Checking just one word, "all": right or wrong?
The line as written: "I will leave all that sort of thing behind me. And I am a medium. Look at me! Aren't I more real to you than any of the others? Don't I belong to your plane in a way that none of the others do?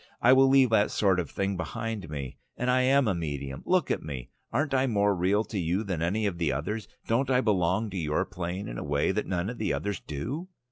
wrong